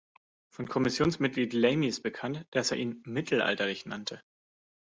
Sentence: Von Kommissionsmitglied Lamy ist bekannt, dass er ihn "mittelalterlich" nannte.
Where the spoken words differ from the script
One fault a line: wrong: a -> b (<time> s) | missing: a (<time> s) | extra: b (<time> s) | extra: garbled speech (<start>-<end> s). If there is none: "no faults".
no faults